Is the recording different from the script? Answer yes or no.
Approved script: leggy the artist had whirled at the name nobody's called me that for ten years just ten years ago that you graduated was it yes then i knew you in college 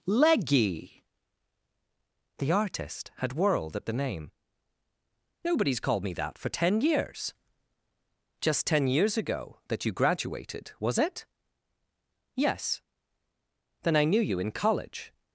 no